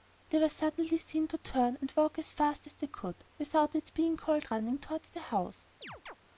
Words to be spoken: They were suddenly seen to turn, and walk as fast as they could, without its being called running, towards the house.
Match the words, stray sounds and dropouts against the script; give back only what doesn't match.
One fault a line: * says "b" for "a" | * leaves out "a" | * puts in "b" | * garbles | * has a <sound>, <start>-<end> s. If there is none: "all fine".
* has a chirp, 5.8-6.2 s